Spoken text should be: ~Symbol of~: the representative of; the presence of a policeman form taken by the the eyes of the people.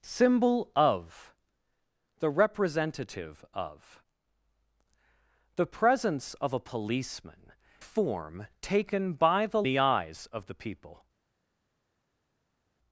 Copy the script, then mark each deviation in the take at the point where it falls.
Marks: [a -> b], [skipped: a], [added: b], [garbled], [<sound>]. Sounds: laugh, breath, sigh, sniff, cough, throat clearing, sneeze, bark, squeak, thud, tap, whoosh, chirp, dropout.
~Symbol of~: the representative of; the presence of a policeman form taken by the the eyes of the people.